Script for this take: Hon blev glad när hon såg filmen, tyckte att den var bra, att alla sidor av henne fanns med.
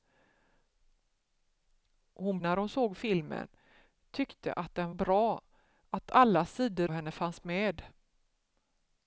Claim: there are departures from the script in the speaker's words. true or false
true